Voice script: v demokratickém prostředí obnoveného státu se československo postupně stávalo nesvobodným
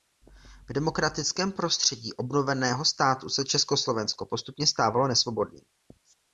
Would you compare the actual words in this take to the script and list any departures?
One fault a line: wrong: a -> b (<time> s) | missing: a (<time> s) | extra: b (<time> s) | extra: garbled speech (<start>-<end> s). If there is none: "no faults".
no faults